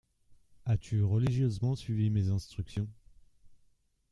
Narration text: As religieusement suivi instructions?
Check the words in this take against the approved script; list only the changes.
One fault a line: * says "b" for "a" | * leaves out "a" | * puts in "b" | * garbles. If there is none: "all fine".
* puts in "tu"
* puts in "mes"